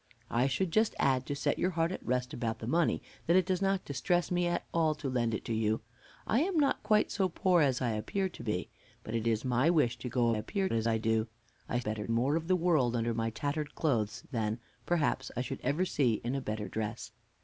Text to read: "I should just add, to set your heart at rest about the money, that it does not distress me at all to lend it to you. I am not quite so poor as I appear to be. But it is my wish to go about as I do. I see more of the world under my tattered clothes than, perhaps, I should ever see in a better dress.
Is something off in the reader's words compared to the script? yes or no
yes